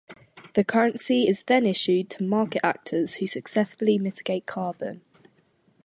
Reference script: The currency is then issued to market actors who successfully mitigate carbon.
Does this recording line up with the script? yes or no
yes